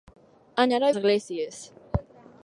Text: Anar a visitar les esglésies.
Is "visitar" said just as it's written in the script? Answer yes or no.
no